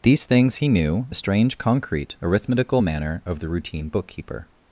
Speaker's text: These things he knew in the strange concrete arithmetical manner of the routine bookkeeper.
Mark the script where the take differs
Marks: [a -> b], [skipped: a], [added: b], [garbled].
These things he knew [skipped: in] the strange concrete arithmetical manner of the routine bookkeeper.